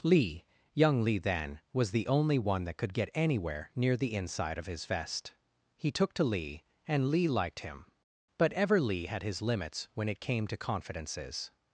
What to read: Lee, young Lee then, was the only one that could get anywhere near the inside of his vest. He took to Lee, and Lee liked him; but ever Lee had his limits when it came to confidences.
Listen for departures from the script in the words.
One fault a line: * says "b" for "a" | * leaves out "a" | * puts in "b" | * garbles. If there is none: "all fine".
all fine